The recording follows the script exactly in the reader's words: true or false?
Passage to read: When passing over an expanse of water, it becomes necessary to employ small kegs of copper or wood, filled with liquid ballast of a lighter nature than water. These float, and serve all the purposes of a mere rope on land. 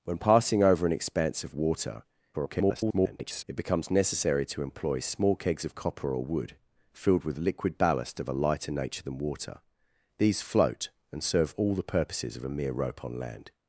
false